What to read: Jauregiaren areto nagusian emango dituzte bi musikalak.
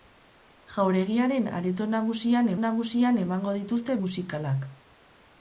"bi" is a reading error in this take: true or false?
true